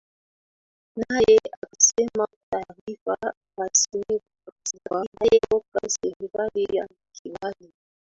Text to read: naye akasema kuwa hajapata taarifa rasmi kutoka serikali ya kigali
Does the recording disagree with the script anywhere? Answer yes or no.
yes